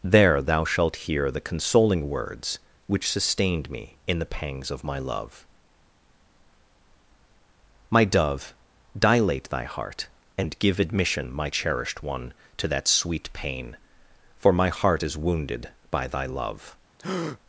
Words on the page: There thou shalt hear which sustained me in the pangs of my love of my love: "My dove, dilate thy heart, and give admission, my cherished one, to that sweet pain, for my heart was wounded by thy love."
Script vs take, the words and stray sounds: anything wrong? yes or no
yes